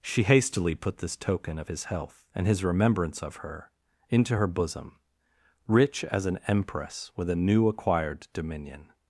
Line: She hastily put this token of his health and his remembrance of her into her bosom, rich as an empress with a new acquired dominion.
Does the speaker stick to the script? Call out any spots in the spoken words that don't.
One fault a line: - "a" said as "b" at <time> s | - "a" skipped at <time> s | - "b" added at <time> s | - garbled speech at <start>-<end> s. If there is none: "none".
none